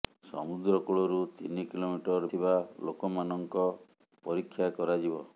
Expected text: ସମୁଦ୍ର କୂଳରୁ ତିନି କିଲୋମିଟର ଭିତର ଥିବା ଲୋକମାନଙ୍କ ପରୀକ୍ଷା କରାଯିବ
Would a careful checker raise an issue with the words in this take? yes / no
yes